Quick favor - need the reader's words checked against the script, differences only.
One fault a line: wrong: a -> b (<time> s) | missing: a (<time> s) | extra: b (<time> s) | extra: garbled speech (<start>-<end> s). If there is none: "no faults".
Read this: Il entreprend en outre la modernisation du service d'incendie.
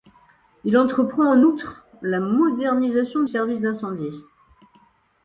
missing: du (3.2 s)